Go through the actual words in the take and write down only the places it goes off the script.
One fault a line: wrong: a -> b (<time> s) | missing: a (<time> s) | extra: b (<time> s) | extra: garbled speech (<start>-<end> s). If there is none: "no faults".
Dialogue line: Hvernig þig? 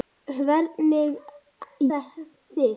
no faults